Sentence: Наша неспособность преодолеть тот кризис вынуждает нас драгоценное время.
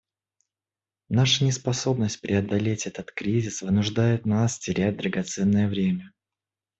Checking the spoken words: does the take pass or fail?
fail